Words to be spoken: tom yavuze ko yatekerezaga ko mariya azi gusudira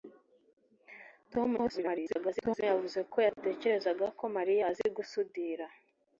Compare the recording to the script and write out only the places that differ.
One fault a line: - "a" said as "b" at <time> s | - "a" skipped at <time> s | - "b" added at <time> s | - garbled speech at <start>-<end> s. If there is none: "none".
- garbled speech at 1.6-2.6 s